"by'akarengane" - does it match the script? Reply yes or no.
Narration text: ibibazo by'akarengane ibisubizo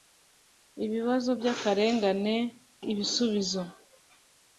yes